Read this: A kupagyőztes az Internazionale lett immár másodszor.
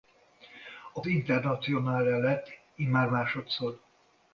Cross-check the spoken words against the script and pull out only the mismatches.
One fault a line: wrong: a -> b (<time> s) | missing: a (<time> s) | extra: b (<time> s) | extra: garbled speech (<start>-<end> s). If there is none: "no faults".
missing: kupagyőztes az (1.0 s)